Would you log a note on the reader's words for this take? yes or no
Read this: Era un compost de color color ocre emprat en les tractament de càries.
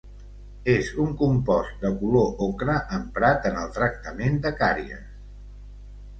yes